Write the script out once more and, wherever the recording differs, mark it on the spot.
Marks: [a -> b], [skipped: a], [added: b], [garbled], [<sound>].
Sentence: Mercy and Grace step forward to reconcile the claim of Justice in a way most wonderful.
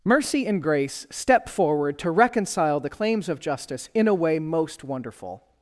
Mercy and Grace step forward to reconcile the [claim -> claims] of Justice in a way most wonderful.